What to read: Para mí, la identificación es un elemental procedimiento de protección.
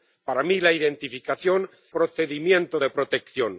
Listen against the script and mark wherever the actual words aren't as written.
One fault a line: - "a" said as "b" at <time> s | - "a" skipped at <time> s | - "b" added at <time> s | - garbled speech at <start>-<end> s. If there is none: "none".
- "es un elemental" skipped at 1.7 s